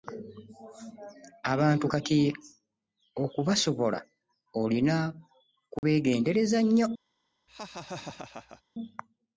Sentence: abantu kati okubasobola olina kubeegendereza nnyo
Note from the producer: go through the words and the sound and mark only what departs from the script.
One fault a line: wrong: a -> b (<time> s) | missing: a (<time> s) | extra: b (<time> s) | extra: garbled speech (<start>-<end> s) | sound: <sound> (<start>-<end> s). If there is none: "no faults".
sound: dropout (5.8-5.8 s)
sound: laugh (7.5-8.6 s)